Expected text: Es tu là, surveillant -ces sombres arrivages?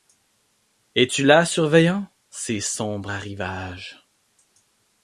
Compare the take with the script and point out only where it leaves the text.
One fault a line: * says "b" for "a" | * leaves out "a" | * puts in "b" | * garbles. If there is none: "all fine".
all fine